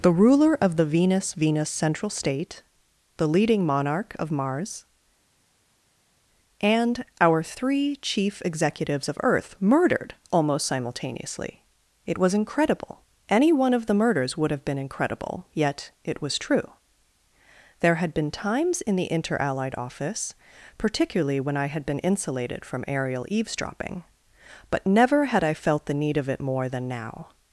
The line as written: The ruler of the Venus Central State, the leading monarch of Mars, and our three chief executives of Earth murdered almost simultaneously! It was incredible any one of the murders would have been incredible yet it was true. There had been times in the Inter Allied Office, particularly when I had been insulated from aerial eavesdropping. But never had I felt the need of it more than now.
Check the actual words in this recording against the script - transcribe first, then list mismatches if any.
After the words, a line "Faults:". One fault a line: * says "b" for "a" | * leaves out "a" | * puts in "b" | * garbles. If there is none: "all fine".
The ruler of the Venus Venus Central State, the leading monarch of Mars, and our three chief executives of Earth murdered almost simultaneously! It was incredible any one of the murders would have been incredible yet it was true. There had been times in the Inter Allied Office, particularly when I had been insulated from aerial eavesdropping. But never had I felt the need of it more than now.
Faults:
* puts in "Venus"